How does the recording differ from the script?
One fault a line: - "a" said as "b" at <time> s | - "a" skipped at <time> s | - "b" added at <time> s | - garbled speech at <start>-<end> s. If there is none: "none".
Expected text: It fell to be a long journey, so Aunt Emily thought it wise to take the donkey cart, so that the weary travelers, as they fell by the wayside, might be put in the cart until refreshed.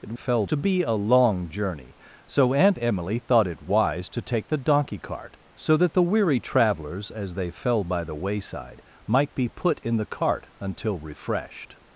none